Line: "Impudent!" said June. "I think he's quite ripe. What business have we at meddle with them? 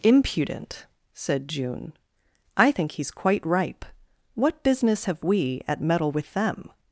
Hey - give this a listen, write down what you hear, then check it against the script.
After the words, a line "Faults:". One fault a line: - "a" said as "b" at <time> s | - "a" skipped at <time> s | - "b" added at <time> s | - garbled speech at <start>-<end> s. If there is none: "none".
"Impudent!" said June. "I think he's quite ripe. What business have we at meddle with them?
Faults:
none